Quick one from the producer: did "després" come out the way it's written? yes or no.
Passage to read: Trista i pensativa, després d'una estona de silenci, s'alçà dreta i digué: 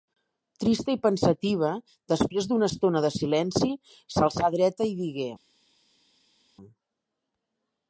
yes